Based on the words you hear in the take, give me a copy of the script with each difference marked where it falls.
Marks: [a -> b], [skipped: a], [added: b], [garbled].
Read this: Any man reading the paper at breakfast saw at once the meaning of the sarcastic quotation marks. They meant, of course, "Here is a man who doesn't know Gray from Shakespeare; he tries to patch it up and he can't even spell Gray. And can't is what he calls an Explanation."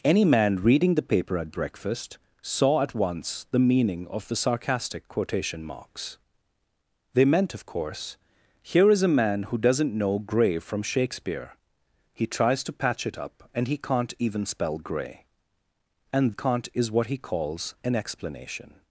Any man reading the paper at breakfast saw at once the meaning of the sarcastic quotation marks. They meant, of course, "Here is a man who doesn't know Gray from Shakespeare; he tries to patch it up and he can't even spell Gray. And can't is what he calls an Explanation."